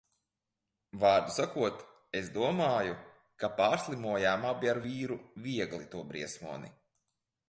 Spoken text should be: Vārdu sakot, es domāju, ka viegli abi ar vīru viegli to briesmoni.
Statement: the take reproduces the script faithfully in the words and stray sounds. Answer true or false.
false